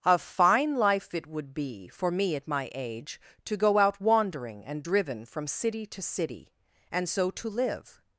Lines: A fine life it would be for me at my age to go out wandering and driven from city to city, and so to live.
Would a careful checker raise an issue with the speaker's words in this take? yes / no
no